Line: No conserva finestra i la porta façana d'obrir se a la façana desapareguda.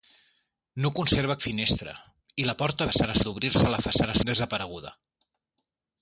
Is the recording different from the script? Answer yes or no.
no